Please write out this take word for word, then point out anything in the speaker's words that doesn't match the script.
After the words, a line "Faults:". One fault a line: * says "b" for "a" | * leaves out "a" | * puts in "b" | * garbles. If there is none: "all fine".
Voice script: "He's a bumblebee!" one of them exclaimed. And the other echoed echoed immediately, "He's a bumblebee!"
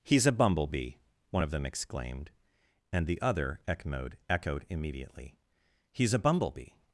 "He's a bumblebee!" one of them exclaimed. And the other echoed echoed immediately, "He's a bumblebee!"
Faults:
all fine